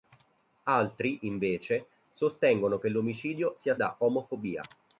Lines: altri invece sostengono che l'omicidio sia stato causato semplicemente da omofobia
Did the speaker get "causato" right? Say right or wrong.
wrong